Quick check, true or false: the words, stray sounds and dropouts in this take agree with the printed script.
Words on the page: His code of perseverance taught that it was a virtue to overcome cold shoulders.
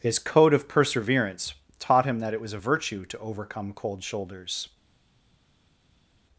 false